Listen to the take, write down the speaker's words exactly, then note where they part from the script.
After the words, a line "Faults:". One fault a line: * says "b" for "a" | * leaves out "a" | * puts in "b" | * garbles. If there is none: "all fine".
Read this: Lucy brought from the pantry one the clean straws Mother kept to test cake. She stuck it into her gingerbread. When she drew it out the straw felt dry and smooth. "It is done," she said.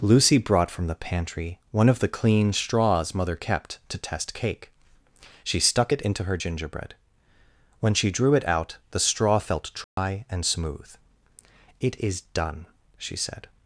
Lucy brought from the pantry one of the clean straws Mother kept to test cake. She stuck it into her gingerbread. When she drew it out the straw felt dry and smooth. "It is done," she said.
Faults:
* puts in "of"